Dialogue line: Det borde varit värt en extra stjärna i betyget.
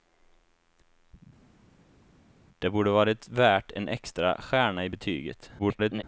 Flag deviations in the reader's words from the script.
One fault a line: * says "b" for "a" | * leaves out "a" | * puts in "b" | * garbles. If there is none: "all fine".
* garbles